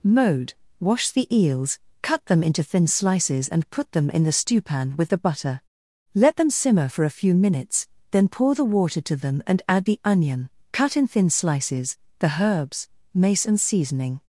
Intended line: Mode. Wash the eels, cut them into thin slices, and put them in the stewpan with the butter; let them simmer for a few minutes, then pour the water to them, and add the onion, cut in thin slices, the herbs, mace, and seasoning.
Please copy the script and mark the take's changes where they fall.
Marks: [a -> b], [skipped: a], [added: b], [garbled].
Mode. Wash the eels, cut them into thin slices, and put them in the stewpan with the butter; let them simmer for a few minutes, then pour the water to them, and add the onion, cut in thin slices, the herbs, mace, and seasoning.